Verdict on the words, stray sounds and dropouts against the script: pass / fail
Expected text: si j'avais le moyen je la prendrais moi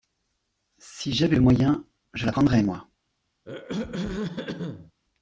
fail